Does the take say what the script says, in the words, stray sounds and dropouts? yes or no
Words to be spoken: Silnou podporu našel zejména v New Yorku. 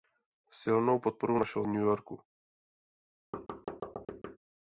no